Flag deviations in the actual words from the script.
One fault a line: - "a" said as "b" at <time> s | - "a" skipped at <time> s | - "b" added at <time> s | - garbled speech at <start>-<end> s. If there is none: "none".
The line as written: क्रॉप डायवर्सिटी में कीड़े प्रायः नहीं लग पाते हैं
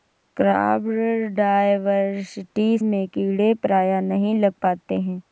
none